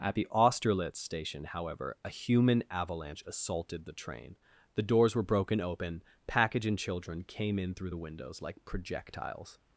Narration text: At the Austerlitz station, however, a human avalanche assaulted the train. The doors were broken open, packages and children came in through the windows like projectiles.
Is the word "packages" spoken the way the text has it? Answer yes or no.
no